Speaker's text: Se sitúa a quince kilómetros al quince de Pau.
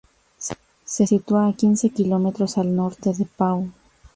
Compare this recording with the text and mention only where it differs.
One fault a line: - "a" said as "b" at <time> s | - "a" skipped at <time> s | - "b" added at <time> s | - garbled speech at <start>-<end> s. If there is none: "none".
- "quince" said as "norte" at 2.8 s